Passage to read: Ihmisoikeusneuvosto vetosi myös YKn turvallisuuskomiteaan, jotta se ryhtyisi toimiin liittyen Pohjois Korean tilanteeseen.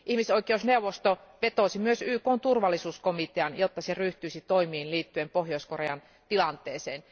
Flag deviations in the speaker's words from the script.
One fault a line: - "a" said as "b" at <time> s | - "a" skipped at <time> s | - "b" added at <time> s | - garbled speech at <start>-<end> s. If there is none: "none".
none